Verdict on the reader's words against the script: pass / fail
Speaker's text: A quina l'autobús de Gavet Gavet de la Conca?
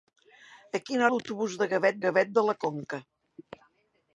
pass